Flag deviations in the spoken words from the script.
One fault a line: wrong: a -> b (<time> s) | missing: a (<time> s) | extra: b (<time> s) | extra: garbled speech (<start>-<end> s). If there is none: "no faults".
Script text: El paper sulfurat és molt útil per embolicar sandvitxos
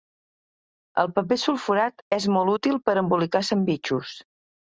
no faults